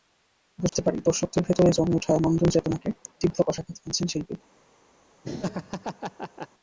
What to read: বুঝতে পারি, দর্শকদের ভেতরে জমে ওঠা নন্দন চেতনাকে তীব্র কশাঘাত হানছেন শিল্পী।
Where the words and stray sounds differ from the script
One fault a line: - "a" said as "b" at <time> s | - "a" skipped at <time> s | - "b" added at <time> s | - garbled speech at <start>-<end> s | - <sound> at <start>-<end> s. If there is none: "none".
- dropout at 0.7-0.7 s
- laugh at 5.2-6.5 s